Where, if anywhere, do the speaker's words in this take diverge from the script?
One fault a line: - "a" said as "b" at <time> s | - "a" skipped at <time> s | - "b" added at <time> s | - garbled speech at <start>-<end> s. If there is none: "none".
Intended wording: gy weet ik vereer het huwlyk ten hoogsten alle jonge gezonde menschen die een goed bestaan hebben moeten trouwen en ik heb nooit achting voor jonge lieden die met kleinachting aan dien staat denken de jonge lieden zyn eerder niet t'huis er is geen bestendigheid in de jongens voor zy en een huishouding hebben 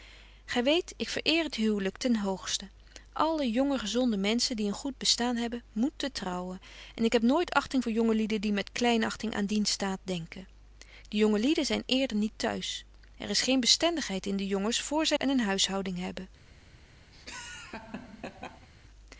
none